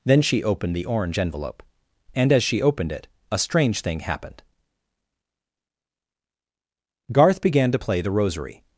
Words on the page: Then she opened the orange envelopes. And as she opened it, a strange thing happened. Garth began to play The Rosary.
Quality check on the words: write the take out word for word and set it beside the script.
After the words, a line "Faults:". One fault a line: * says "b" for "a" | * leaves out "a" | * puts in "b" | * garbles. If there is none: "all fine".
Then she opened the orange envelope. And as she opened it, a strange thing happened. Garth began to play The Rosary.
Faults:
* says "envelope" for "envelopes"